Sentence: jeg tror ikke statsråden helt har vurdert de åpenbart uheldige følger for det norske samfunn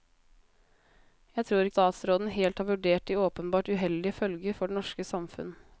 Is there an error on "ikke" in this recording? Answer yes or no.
yes